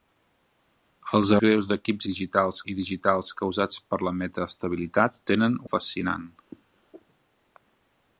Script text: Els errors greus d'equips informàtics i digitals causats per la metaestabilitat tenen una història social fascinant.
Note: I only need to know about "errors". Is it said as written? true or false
false